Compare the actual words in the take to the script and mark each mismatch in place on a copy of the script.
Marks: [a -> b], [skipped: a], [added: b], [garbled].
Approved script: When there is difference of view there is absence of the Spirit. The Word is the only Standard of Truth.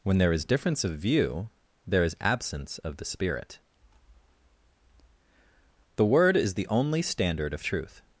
When there is difference of view there is absence of the Spirit. The Word is the only Standard of Truth.